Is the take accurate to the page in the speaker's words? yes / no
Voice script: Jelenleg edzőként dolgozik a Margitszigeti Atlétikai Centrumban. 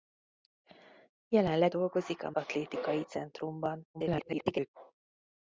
no